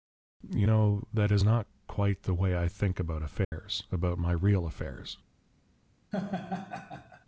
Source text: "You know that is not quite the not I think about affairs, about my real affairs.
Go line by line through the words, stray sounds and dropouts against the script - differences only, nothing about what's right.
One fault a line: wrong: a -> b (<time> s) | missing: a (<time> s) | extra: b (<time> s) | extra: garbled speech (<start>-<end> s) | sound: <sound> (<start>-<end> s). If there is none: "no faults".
wrong: not -> way (2.3 s)
sound: dropout (3.4-3.5 s)
sound: laugh (6.1-7.3 s)